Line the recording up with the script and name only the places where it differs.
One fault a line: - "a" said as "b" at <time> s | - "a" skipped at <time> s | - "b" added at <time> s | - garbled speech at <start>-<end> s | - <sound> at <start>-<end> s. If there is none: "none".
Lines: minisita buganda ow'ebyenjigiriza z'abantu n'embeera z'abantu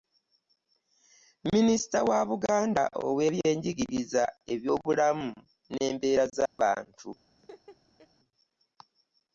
- "wa" added at 2.1 s
- "z'abantu" said as "ebyobulamu" at 4.5 s
- dropout at 6.5-6.6 s
- laugh at 7.4-8.1 s